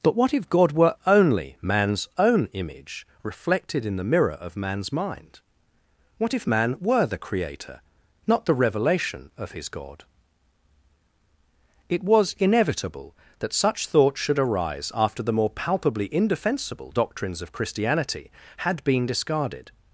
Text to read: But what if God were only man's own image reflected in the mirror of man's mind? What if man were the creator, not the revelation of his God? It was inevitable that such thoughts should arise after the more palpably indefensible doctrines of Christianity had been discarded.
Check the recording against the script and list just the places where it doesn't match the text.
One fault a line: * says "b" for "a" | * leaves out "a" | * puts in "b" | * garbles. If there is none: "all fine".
all fine